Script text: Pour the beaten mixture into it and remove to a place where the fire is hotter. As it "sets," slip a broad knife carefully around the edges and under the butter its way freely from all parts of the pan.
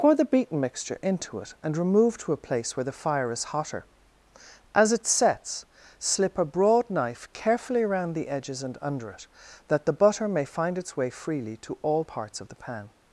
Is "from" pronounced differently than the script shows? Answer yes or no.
yes